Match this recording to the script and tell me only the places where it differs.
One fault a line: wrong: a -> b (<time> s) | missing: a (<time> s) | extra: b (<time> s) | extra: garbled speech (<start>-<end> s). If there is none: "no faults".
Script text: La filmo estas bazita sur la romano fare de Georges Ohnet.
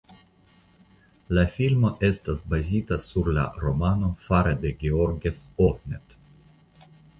no faults